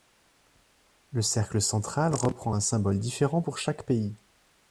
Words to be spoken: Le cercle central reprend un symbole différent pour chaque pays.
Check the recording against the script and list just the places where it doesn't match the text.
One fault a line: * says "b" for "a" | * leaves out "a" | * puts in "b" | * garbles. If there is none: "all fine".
all fine